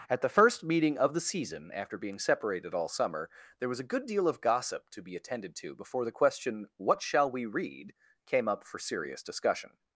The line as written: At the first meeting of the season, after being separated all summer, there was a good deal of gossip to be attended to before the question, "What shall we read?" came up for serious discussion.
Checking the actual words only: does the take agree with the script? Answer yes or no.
yes